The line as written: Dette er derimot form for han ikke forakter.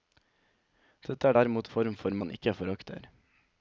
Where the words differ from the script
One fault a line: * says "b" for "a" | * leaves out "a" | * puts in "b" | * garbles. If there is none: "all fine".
all fine